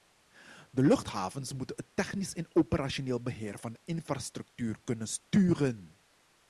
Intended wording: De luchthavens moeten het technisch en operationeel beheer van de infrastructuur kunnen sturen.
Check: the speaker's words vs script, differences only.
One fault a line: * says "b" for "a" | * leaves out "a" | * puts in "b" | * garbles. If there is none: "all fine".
all fine